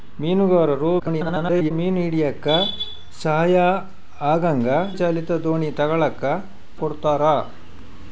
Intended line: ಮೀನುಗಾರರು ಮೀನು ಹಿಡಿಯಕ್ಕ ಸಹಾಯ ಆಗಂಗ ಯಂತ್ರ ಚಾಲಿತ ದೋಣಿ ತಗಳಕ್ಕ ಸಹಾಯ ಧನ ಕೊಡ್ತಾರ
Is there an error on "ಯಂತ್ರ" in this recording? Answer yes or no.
yes